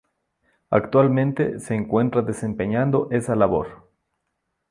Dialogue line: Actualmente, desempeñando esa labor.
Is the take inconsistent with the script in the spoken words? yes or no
yes